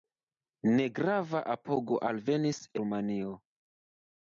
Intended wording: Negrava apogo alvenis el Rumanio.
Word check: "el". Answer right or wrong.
wrong